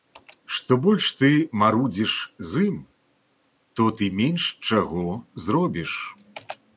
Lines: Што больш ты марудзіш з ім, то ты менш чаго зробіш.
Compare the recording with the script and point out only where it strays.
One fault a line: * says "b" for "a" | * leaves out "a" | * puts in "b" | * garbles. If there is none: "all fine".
all fine